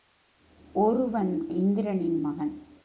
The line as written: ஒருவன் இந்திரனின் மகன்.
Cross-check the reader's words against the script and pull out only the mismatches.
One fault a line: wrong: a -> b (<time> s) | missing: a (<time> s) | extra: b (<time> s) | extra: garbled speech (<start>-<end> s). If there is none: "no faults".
no faults